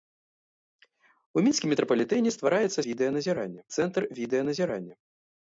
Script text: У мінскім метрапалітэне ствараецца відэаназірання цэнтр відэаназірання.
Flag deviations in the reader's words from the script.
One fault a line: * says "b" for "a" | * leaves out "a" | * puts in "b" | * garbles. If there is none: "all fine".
all fine